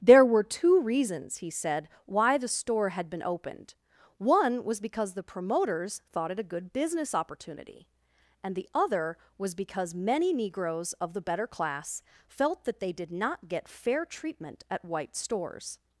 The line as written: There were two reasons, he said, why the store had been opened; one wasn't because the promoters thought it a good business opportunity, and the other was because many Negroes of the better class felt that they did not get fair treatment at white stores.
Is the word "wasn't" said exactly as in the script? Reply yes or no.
no